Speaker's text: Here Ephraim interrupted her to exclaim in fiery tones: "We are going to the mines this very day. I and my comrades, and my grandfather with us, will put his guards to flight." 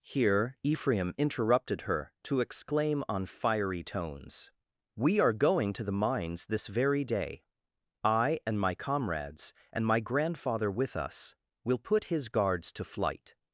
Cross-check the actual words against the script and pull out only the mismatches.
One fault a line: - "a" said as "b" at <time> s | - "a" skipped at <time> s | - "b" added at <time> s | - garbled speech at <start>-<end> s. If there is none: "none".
- "in" said as "on" at 3.1 s